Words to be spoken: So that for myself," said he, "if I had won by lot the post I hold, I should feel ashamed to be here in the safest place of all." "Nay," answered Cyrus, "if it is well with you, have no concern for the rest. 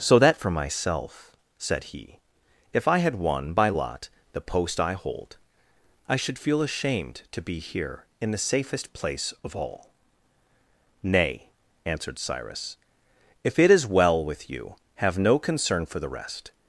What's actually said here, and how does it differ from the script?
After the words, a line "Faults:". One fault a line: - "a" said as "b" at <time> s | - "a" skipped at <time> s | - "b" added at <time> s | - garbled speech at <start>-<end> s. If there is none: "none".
So that for myself," said he, "if I had won by lot the post I hold, I should feel ashamed to be here in the safest place of all." "Nay," answered Cyrus, "if it is well with you, have no concern for the rest.
Faults:
none